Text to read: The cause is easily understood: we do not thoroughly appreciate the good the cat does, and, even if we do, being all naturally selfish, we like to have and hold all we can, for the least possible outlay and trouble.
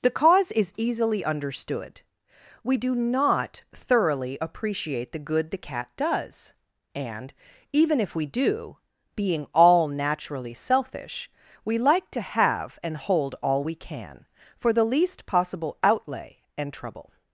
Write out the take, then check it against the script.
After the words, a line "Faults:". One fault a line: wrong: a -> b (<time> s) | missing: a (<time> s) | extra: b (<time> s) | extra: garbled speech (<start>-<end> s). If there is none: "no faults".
The cause is easily understood: we do not thoroughly appreciate the good the cat does, and, even if we do, being all naturally selfish, we like to have and hold all we can, for the least possible outlay and trouble.
Faults:
no faults